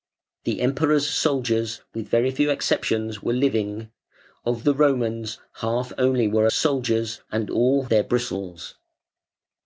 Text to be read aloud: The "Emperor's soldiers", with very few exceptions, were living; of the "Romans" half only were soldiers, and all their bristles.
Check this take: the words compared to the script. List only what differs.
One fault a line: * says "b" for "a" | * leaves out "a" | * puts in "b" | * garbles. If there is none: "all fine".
all fine